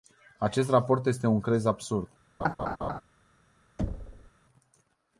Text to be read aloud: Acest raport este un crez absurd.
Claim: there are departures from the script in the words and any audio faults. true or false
true